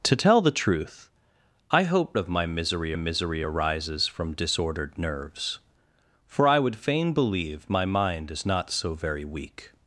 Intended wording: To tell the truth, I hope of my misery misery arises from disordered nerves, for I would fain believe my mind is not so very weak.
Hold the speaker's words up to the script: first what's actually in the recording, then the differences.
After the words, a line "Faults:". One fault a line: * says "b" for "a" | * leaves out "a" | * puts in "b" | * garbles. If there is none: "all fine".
To tell the truth, I hope of my misery misery arises from disordered nerves, for I would fain believe my mind is not so very weak.
Faults:
all fine